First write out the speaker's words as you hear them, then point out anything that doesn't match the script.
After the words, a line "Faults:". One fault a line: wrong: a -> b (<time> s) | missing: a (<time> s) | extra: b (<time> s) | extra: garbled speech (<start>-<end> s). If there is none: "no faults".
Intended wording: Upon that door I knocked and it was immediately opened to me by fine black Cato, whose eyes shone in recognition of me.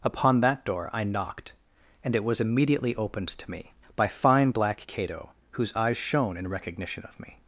Upon that door I knocked and it was immediately opened to me by fine black Cato, whose eyes shone in recognition of me.
Faults:
no faults